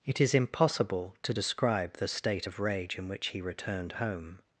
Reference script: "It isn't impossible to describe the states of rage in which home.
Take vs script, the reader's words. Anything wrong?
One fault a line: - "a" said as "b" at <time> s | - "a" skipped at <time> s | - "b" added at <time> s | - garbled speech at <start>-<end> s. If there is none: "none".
- "isn't" said as "is" at 0.2 s
- "states" said as "state" at 2.1 s
- "he returned" added at 3.3 s